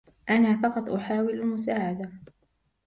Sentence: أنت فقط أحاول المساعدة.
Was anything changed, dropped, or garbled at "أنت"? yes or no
yes